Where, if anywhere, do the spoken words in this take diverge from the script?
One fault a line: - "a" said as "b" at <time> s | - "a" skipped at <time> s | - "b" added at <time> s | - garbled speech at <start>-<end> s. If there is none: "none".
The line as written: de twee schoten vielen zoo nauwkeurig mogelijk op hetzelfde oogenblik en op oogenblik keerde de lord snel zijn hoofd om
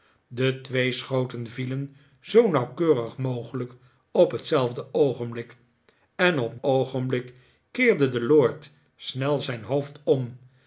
none